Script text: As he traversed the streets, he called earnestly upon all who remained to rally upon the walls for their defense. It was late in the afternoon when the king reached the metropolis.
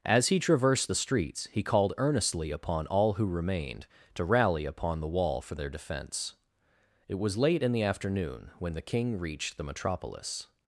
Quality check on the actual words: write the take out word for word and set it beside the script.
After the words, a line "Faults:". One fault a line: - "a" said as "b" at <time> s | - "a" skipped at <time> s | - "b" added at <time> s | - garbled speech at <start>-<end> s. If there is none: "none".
As he traversed the streets, he called earnestly upon all who remained to rally upon the wall for their defense. It was late in the afternoon when the king reached the metropolis.
Faults:
- "walls" said as "wall" at 5.1 s